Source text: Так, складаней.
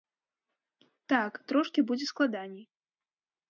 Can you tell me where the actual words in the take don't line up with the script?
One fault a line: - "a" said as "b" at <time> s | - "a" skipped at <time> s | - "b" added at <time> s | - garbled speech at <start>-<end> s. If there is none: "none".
- "трошкі будзе" added at 1.5 s